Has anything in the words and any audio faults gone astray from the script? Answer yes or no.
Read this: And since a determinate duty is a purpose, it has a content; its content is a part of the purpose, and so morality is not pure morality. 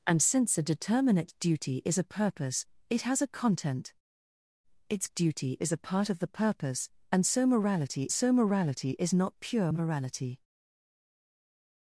yes